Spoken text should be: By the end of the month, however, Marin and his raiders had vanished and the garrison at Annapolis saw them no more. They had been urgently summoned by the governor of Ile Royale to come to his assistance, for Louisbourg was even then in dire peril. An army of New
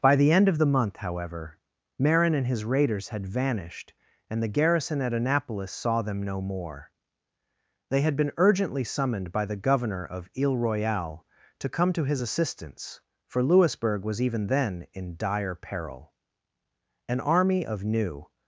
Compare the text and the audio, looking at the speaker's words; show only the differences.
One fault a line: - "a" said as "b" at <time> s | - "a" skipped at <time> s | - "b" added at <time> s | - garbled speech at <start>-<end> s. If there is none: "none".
none